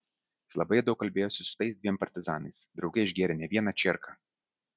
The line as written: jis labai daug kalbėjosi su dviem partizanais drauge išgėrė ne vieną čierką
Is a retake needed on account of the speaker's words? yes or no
yes